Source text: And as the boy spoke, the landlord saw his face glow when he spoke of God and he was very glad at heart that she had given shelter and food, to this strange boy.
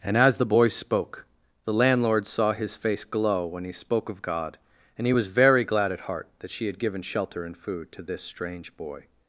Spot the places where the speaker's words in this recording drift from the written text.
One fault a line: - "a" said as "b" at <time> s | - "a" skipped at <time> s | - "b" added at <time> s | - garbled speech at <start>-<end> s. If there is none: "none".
none